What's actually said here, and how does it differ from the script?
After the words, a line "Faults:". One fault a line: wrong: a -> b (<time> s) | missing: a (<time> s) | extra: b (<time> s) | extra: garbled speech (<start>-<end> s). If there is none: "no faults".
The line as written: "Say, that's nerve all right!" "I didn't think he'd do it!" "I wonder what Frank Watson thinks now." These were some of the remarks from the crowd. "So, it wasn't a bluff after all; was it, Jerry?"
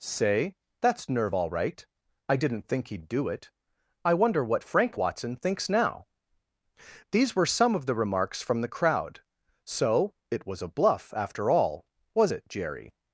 "Say, that's nerve all right!" "I didn't think he'd do it!" "I wonder what Frank Watson thinks now." These were some of the remarks from the crowd. "So, it was a bluff after all; was it, Jerry?"
Faults:
wrong: wasn't -> was (10.4 s)